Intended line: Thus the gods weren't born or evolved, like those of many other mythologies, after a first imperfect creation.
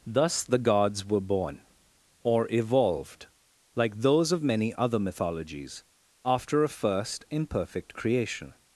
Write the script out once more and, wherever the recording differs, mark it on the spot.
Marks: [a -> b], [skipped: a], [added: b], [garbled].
Thus the gods [weren't -> were] born or evolved, like those of many other mythologies, after a first imperfect creation.